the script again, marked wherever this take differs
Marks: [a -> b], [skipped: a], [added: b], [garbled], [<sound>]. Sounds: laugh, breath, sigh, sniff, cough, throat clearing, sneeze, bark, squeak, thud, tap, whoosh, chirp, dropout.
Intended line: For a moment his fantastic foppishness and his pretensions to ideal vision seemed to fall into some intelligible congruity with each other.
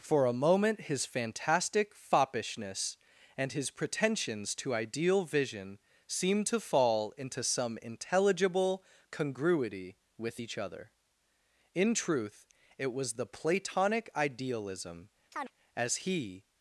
For a moment his fantastic foppishness and his pretensions to ideal vision seemed to fall into some intelligible congruity with each other. [added: In truth it was the Platonic Idealism as he] [chirp]